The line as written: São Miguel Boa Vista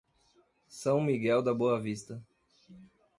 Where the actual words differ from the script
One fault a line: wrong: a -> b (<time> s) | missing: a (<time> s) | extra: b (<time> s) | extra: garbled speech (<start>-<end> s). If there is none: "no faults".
extra: da (1.4 s)